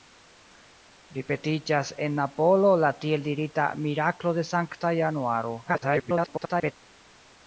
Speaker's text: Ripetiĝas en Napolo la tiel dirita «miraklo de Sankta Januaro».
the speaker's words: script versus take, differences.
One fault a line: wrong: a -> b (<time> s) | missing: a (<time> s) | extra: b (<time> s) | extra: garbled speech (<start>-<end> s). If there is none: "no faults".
extra: garbled speech (5.6-6.7 s)